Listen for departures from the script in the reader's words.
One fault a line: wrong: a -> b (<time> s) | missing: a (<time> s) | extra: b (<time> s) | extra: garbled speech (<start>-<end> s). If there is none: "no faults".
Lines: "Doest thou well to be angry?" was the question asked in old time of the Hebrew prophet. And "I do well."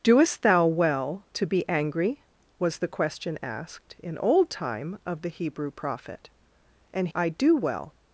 no faults